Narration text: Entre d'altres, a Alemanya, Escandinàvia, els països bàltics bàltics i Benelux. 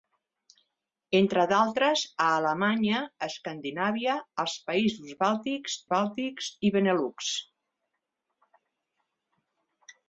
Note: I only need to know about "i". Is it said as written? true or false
true